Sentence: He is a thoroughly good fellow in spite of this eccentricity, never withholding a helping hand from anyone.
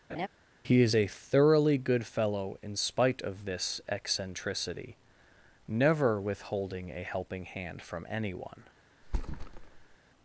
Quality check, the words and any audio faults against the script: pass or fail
fail